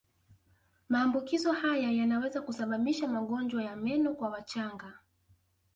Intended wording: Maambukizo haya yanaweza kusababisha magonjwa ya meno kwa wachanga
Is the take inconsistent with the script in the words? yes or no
no